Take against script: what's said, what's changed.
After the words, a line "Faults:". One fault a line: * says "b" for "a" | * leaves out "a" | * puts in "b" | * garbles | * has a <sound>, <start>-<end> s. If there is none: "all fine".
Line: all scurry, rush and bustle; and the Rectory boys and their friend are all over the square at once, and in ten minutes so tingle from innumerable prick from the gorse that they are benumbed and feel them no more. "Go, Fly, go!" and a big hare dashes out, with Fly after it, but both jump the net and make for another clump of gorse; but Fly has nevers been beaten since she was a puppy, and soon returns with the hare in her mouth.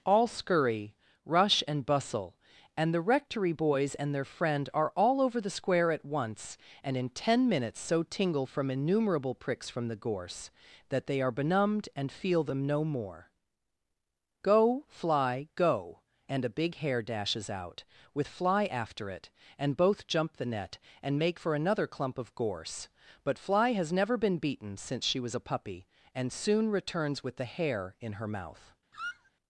all scurry, rush and bustle; and the Rectory boys and their friend are all over the square at once, and in ten minutes so tingle from innumerable pricks from the gorse that they are benumbed and feel them no more. "Go, Fly, go!" and a big hare dashes out, with Fly after it, and both jump the net and make for another clump of gorse; but Fly has never been beaten since she was a puppy, and soon returns with the hare in her mouth.
Faults:
* says "pricks" for "prick"
* says "and" for "but"
* says "never" for "nevers"
* has a squeak, 28.9-29.3 s